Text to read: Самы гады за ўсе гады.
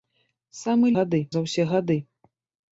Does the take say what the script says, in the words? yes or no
yes